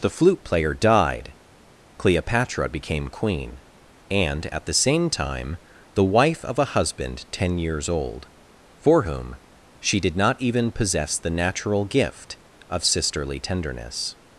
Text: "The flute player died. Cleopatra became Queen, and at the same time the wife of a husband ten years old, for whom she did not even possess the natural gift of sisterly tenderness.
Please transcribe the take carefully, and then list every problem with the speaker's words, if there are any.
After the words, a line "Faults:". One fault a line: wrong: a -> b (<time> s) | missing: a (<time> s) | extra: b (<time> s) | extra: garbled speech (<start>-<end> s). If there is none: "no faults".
"The flute player died. Cleopatra became Queen, and at the same time the wife of a husband ten years old, for whom she did not even possess the natural gift of sisterly tenderness.
Faults:
no faults